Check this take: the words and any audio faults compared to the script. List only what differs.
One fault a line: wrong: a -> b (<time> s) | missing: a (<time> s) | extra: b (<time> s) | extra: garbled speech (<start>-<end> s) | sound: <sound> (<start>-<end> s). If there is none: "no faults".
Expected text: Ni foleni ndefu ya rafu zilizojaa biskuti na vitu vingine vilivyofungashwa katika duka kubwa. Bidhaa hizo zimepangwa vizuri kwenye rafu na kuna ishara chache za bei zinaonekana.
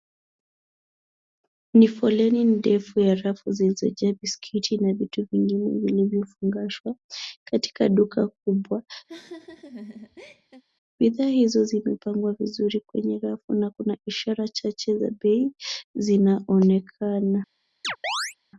sound: laugh (9.1-10.6 s)
sound: chirp (17.8-18.4 s)